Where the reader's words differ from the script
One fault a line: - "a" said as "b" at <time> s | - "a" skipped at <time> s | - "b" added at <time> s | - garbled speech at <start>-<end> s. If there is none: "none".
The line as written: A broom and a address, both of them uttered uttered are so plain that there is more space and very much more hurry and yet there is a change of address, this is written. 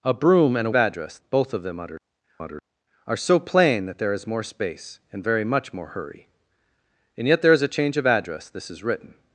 none